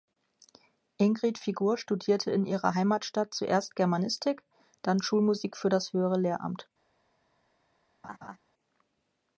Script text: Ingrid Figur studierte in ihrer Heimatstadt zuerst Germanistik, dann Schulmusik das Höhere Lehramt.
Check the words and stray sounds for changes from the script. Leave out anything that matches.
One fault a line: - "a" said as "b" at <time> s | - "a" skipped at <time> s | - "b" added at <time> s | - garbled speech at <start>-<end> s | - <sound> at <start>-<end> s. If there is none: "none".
- "für" added at 5.6 s
- laugh at 8.0-8.4 s